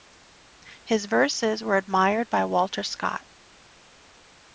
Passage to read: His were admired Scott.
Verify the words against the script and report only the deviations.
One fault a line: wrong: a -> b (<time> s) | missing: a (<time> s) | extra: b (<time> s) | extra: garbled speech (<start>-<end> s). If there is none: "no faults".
extra: verses (1.1 s)
extra: by Walter (2.3 s)